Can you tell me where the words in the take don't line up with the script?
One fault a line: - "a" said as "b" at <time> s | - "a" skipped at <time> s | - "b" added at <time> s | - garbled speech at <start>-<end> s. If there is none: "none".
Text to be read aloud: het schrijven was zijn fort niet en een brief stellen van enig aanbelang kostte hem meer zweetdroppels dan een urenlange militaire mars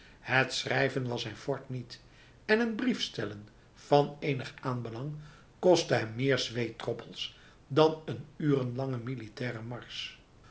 none